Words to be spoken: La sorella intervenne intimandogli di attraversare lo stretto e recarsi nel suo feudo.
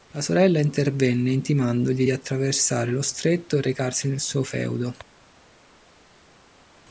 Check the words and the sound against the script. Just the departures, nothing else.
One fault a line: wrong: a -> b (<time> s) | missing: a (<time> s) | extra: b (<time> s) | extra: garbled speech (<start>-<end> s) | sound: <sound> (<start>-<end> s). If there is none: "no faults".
no faults